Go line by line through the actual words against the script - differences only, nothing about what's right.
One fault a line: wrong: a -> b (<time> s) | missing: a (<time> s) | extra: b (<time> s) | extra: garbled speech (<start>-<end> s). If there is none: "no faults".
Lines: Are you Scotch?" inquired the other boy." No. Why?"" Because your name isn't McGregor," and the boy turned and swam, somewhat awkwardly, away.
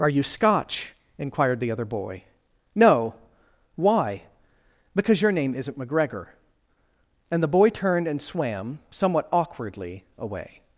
no faults